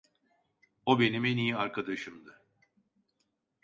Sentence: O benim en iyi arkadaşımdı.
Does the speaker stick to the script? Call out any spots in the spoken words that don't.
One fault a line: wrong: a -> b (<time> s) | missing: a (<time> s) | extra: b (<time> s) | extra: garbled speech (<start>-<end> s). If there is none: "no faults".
no faults